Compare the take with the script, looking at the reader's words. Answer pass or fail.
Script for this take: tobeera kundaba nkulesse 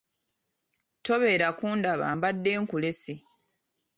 fail